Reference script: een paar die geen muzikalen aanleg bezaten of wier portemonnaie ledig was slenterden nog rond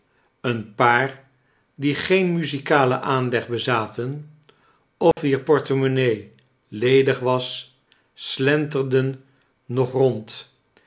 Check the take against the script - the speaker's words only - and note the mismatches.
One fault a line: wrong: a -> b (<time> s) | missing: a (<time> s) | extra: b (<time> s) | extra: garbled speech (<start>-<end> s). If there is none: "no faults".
no faults